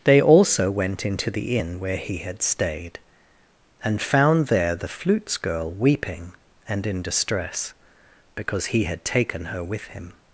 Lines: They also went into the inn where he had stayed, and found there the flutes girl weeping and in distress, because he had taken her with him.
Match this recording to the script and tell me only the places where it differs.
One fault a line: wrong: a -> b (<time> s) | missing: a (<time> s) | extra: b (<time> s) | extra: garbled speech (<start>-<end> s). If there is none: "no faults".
no faults